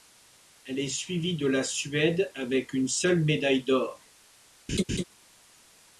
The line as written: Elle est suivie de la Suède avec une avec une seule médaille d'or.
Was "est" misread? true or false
false